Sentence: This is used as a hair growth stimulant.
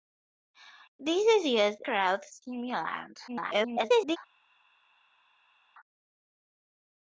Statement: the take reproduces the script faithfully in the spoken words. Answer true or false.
false